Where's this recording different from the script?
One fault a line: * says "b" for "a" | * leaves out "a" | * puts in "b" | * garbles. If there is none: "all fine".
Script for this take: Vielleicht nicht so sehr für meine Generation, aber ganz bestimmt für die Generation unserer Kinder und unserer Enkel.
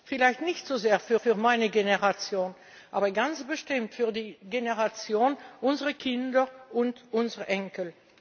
* puts in "für"